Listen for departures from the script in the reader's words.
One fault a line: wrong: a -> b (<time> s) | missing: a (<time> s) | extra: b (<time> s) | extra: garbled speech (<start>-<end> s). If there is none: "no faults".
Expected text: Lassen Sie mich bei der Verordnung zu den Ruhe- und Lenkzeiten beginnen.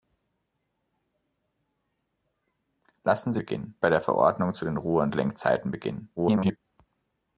wrong: mich -> beginnen (3.4 s)
extra: garbled speech (6.2-6.6 s)